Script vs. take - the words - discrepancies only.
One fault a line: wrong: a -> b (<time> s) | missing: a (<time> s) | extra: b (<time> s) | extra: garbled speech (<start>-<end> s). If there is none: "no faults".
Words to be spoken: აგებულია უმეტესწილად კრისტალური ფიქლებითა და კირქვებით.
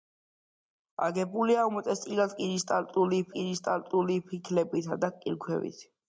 extra: კრისტალური (3.4 s)